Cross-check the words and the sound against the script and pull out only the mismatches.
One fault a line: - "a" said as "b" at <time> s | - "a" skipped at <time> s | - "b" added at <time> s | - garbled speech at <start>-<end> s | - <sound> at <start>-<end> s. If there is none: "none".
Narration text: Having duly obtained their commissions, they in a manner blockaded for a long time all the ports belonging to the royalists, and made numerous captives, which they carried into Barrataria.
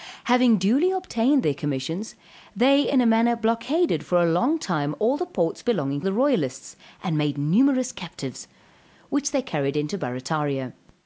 - "to" skipped at 6.0 s